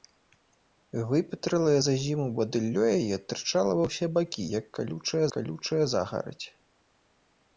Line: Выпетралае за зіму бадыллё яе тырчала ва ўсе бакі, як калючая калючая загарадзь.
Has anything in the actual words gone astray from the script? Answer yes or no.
no